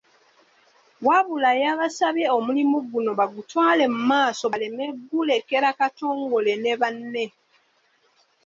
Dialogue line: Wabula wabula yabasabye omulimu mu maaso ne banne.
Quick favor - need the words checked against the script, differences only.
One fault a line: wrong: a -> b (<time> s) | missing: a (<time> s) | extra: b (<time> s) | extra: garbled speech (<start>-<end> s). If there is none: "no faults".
missing: wabula (1.5 s)
extra: guno bagutwale (2.9 s)
extra: baleme gulekera Katongole (4.5 s)